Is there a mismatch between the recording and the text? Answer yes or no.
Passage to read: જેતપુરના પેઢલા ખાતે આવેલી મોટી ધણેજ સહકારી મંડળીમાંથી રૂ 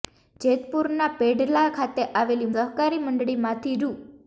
yes